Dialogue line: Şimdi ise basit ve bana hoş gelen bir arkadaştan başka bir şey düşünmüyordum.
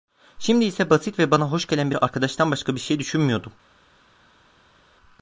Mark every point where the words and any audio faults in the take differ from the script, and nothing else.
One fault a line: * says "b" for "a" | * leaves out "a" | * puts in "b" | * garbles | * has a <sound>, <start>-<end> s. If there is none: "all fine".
all fine